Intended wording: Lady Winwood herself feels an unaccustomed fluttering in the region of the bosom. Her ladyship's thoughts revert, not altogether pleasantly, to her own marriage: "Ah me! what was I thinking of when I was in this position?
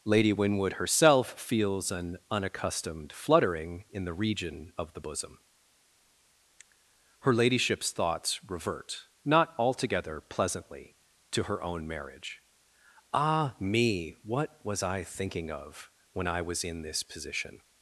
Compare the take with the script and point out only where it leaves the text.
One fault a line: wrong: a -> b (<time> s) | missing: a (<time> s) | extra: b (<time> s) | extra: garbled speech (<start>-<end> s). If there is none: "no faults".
no faults